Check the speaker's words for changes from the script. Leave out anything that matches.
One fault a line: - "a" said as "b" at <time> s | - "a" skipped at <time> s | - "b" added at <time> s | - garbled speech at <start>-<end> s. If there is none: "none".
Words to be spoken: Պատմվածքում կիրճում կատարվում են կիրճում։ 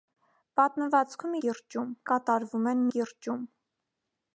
none